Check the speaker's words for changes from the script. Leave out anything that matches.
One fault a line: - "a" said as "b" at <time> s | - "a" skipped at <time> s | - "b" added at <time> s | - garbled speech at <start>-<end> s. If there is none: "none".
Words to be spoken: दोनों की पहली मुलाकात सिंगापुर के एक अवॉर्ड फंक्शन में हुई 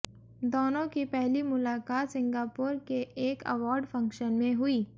none